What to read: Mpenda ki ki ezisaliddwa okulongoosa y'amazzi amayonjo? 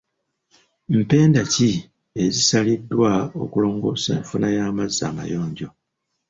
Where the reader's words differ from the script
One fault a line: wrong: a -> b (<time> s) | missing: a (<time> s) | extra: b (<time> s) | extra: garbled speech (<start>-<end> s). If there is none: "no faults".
missing: ki (1.7 s)
extra: enfuna (4.2 s)